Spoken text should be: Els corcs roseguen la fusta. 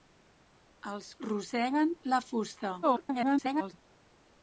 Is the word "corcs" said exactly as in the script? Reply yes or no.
no